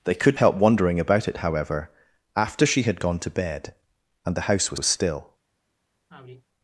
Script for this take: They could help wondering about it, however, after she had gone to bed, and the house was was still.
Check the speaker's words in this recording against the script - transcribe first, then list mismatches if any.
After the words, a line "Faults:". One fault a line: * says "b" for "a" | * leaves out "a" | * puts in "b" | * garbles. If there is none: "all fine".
They could help wondering about it, however, after she had gone to bed, and the house was was still.
Faults:
all fine